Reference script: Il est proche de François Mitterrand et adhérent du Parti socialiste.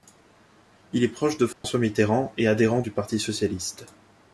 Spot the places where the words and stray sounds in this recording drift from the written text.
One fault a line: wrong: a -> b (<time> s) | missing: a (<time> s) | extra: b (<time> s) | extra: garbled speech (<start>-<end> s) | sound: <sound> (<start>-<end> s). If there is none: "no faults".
sound: dropout (1.5-1.6 s)